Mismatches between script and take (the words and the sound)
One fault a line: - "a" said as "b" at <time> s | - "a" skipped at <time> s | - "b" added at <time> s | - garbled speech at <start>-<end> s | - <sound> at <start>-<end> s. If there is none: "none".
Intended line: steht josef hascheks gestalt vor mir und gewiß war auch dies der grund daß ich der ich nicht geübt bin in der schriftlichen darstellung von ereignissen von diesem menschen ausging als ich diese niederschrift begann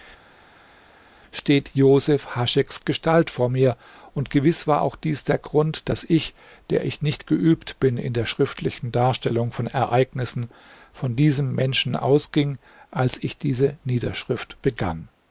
none